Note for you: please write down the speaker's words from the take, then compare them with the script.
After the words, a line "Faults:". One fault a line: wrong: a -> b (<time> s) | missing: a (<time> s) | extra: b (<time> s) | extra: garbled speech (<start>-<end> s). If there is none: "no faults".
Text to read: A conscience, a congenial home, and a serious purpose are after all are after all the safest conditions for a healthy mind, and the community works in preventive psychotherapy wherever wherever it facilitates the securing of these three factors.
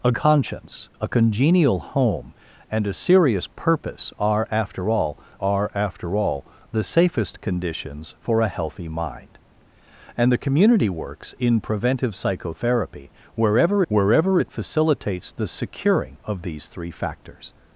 A conscience, a congenial home, and a serious purpose are after all are after all the safest conditions for a healthy mind, and the community works in preventive psychotherapy wherever wherever it facilitates the securing of these three factors.
Faults:
no faults